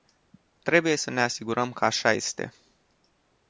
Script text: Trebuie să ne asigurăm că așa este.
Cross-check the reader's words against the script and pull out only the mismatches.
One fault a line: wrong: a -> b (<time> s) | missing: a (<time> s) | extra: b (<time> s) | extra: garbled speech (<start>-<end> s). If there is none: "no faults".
no faults